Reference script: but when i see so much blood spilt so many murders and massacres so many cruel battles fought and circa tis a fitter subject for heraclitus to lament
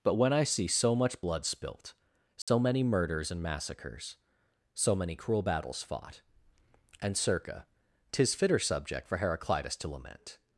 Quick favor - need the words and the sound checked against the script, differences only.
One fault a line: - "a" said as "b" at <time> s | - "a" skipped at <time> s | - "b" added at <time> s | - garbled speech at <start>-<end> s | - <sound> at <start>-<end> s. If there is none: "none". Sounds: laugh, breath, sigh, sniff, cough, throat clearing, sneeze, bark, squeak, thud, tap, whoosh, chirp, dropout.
- dropout at 2.4-2.5 s
- "a" skipped at 8.3 s